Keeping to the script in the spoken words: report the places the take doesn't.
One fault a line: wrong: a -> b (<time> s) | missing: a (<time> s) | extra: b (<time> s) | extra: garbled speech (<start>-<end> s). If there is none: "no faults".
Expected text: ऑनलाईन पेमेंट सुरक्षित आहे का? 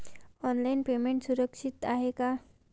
no faults